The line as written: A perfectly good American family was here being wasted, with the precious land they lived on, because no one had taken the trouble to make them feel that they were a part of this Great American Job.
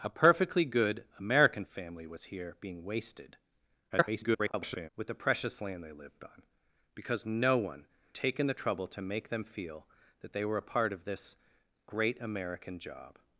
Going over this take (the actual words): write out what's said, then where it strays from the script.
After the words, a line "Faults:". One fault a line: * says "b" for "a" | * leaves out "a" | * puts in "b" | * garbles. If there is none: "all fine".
A perfectly good American family was here being wasted, [garbled] with the precious land they lived on, because no one taken the trouble to make them feel that they were a part of this Great American Job.
Faults:
* garbles
* leaves out "had"